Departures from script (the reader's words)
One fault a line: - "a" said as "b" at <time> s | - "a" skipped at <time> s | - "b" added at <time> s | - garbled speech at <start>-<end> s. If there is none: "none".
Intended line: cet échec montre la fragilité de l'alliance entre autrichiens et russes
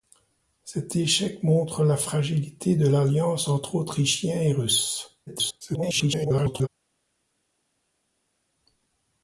- garbled speech at 5.3-6.7 s